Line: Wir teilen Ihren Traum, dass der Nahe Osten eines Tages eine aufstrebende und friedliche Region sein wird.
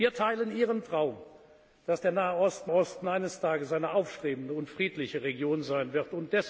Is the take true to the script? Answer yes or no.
no